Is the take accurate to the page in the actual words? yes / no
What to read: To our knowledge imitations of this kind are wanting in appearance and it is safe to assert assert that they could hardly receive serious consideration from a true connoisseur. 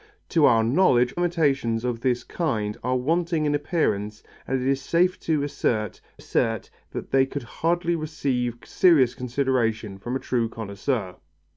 yes